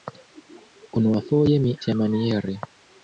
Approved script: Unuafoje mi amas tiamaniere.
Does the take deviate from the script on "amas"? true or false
true